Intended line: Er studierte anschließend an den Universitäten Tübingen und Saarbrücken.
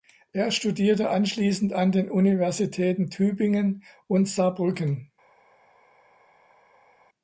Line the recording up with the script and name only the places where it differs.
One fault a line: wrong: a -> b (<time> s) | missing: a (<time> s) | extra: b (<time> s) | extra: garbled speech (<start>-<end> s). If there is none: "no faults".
no faults